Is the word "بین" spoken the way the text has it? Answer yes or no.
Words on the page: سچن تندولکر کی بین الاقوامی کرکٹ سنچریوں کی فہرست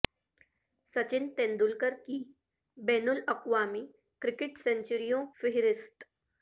yes